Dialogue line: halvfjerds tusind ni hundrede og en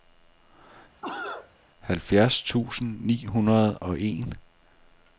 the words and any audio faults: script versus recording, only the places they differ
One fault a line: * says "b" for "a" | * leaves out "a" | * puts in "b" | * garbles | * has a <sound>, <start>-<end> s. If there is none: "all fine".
* has a cough, 1.0-1.5 s